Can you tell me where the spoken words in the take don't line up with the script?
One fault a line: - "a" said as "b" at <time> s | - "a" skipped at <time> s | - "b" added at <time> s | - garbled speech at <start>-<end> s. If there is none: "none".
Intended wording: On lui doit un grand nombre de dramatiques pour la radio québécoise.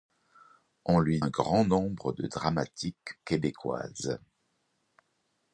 - "doit" skipped at 1.2 s
- "pour la radio" skipped at 3.2 s